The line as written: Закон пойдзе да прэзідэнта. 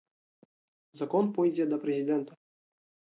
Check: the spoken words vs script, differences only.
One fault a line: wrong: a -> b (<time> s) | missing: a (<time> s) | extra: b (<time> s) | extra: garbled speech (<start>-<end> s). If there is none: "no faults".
no faults